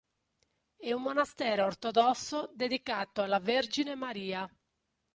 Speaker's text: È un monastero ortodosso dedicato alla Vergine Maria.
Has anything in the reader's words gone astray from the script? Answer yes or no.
no